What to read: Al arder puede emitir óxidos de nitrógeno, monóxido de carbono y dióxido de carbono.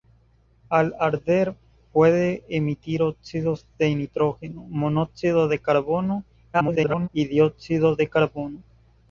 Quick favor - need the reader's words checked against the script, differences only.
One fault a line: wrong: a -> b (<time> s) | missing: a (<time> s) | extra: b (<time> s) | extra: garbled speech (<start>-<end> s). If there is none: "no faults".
extra: garbled speech (6.5-7.1 s)